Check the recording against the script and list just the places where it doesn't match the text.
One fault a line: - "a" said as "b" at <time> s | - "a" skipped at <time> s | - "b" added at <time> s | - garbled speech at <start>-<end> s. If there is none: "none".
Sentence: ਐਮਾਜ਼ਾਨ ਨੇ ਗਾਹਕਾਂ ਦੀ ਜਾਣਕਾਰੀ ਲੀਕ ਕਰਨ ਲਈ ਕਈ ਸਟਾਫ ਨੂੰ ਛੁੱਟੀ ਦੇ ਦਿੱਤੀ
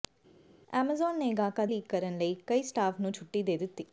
- "ਦੀ ਜਾਣਕਾਰੀ" skipped at 1.7 s